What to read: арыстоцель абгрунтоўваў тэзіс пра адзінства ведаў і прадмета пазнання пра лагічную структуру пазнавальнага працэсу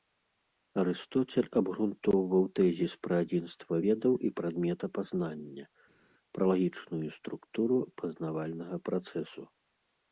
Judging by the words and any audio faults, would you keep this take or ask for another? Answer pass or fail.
pass